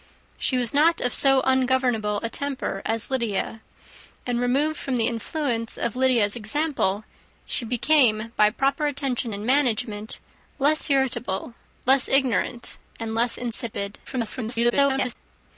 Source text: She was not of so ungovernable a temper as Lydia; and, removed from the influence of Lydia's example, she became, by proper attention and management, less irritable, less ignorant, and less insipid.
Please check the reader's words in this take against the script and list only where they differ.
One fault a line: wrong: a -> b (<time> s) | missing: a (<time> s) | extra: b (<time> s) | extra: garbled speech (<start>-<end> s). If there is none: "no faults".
extra: garbled speech (14.0-15.2 s)